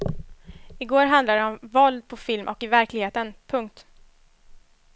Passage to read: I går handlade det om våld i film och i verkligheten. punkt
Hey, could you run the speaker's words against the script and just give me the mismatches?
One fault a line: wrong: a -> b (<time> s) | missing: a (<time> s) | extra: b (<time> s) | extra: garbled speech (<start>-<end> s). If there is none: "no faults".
wrong: i -> på (2.1 s)